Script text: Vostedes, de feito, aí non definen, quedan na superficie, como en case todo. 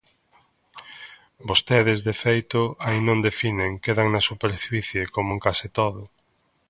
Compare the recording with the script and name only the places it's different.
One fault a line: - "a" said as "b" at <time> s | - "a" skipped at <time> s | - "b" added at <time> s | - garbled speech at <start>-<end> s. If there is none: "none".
none